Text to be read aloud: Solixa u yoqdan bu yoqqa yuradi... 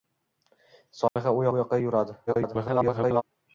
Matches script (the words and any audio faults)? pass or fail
fail